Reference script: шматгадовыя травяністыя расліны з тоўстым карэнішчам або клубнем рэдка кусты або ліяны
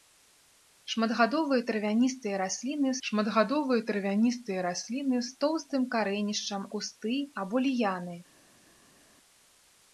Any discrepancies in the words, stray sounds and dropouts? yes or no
yes